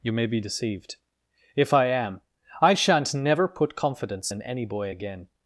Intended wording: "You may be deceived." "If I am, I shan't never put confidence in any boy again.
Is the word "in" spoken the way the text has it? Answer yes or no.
yes